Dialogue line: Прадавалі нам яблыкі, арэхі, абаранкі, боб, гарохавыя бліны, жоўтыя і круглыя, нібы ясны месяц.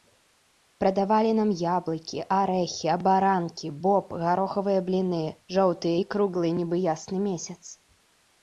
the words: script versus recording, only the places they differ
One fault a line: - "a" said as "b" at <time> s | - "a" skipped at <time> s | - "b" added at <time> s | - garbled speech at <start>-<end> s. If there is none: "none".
none